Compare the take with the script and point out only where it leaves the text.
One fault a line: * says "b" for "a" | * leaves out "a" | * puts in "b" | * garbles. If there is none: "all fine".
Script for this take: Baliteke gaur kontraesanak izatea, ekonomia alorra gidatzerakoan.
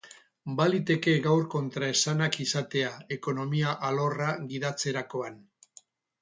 all fine